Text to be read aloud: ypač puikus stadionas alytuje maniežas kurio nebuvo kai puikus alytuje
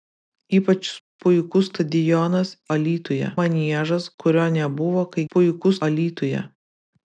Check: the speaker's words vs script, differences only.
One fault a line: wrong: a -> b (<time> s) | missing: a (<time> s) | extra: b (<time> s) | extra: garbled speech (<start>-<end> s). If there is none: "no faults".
no faults